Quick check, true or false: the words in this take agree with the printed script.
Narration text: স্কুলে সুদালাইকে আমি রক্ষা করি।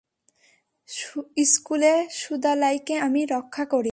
true